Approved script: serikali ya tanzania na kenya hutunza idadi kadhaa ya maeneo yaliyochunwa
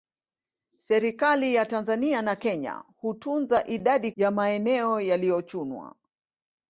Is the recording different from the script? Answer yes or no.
yes